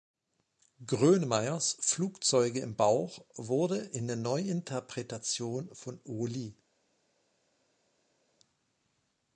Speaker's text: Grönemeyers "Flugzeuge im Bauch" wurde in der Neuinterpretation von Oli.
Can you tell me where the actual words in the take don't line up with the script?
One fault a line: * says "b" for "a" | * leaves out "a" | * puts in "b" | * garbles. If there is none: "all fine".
all fine